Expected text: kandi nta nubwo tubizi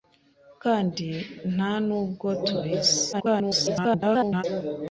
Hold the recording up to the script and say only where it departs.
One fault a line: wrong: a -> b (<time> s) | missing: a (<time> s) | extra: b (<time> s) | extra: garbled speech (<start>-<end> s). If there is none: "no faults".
extra: garbled speech (3.1-4.4 s)